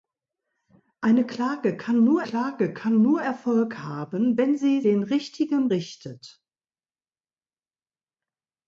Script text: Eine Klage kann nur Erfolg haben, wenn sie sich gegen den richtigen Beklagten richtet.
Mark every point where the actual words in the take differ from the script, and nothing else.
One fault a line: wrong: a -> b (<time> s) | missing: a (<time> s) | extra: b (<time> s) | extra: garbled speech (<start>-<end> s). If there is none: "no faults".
extra: Klage kann nur (2.2 s)
missing: sich gegen (4.8 s)
missing: Beklagten (5.7 s)